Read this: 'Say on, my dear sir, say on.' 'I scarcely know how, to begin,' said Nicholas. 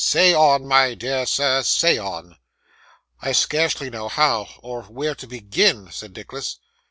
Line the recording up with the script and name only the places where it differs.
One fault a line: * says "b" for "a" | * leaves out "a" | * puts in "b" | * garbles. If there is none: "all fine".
* puts in "or where"